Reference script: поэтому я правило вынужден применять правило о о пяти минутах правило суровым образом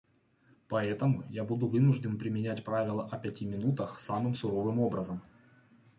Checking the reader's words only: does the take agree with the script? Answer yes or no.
no